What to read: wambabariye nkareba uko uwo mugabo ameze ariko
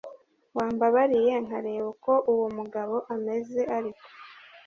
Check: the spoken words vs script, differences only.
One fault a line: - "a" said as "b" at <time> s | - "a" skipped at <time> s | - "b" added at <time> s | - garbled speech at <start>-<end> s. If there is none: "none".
none